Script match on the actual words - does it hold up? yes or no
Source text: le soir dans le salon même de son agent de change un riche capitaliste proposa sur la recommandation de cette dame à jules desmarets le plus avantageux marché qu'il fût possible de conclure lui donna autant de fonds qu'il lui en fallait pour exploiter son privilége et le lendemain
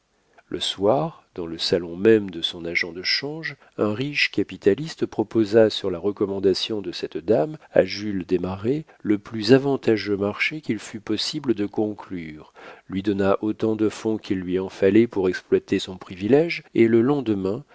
yes